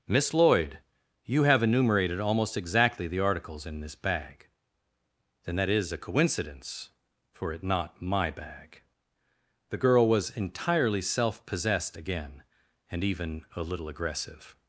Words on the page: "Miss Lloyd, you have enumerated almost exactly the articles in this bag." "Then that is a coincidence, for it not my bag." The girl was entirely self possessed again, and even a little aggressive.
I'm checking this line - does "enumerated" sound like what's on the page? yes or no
yes